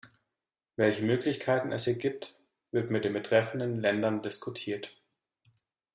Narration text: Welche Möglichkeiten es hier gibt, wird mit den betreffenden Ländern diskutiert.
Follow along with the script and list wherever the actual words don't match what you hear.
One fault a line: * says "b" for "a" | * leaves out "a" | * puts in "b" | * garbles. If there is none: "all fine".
all fine